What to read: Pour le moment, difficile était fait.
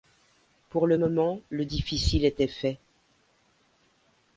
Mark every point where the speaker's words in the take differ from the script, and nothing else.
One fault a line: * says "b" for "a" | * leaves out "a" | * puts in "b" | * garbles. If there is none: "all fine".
* puts in "le"